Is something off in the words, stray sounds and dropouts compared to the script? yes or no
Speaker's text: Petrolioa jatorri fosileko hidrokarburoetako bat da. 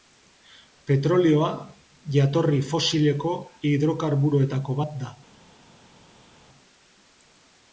no